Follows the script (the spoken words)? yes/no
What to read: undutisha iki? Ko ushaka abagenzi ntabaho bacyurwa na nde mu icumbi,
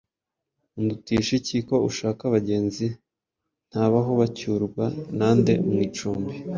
yes